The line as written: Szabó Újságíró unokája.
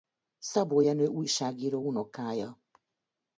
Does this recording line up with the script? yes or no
no